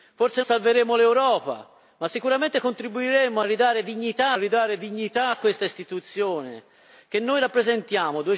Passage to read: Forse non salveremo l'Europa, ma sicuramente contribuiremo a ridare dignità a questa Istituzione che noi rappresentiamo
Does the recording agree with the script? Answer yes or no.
no